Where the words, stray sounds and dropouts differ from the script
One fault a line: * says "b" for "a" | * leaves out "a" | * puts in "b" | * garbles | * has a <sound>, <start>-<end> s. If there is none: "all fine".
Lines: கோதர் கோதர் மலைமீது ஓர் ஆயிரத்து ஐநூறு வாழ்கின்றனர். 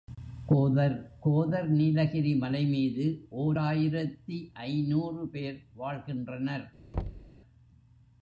* puts in "நீலகிரி"
* puts in "பேர்"
* has a thud, 6.9-7.3 s